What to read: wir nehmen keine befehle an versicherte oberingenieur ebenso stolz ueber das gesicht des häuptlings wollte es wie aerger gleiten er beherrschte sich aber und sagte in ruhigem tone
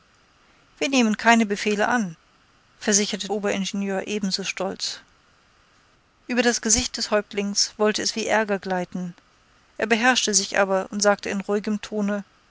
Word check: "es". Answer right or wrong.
right